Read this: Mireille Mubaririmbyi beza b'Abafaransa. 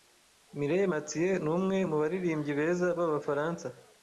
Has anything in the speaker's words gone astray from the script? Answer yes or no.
yes